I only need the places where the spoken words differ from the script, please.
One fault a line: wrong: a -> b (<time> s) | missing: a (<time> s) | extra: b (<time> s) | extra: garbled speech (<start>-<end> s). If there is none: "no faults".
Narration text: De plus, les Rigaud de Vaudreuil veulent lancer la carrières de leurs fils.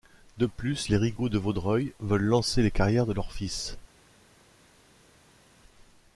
wrong: la -> les (2.6 s)